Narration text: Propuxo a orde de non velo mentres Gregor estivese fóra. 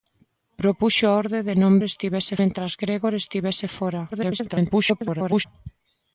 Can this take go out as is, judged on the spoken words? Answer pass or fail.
fail